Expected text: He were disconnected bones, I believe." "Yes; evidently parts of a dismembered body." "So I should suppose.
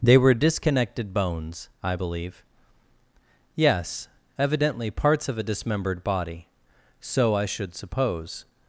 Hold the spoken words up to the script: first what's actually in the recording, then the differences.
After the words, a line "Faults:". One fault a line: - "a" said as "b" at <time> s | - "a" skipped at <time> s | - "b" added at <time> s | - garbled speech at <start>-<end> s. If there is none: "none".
They were disconnected bones, I believe." "Yes; evidently parts of a dismembered body." "So I should suppose.
Faults:
- "He" said as "They" at 0.0 s